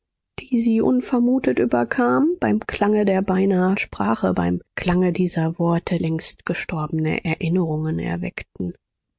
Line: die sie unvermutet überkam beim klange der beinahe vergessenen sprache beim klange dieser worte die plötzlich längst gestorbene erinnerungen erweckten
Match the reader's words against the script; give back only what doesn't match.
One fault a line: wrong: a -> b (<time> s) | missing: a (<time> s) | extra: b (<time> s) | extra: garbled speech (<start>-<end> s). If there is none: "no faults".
missing: vergessenen (3.8 s)
missing: die plötzlich (6.0 s)